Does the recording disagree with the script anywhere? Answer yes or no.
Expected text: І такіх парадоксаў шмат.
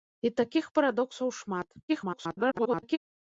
yes